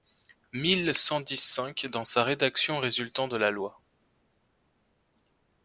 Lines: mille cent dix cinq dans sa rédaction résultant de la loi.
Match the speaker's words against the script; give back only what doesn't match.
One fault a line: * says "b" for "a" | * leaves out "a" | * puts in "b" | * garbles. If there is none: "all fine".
all fine